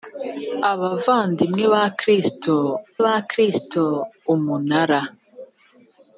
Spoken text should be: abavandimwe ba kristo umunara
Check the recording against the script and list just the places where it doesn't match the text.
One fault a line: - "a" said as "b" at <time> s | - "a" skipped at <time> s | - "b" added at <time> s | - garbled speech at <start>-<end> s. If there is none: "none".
- "ba kristo" added at 3.1 s